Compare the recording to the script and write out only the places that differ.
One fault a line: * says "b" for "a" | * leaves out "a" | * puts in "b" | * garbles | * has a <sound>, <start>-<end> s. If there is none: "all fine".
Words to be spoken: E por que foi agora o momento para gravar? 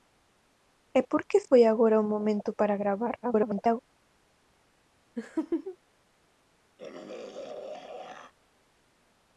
* garbles
* has a laugh, 5.2-5.8 s
* has a throat clearing, 6.8-8.3 s